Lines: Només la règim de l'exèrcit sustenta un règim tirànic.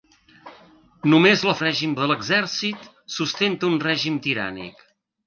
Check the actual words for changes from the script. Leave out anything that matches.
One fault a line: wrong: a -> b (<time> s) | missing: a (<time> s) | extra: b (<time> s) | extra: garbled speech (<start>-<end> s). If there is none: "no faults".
no faults